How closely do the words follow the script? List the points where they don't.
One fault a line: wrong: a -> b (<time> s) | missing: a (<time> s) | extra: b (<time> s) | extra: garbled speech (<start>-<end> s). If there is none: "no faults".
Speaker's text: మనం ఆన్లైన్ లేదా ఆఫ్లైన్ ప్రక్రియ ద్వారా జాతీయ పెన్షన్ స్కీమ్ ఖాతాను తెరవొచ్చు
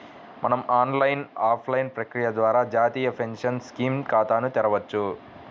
missing: లేదా (1.2 s)